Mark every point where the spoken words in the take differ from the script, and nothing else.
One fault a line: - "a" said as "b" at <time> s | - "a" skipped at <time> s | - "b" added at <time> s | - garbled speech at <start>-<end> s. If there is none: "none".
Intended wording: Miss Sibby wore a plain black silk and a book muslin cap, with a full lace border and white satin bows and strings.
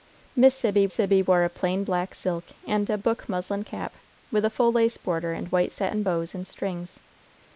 - "Sibby" added at 0.9 s